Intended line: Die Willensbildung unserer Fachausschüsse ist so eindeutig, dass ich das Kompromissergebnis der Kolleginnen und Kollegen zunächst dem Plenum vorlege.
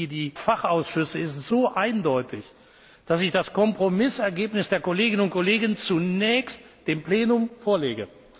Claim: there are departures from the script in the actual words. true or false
true